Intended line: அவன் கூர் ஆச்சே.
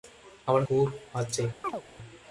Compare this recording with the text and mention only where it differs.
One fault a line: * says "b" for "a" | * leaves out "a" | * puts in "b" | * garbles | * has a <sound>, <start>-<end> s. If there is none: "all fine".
* has a chirp, 1.6-1.8 s